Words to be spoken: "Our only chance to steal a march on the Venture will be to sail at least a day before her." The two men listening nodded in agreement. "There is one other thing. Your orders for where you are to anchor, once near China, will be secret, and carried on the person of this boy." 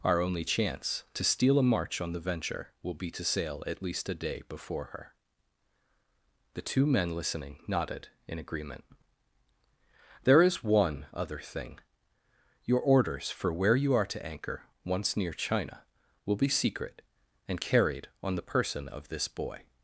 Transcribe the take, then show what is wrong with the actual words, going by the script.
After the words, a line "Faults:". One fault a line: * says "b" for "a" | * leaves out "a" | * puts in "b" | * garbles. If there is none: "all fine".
"Our only chance to steal a march on the Venture will be to sail at least a day before her." The two men listening nodded in agreement. "There is one other thing. Your orders for where you are to anchor, once near China, will be secret, and carried on the person of this boy."
Faults:
all fine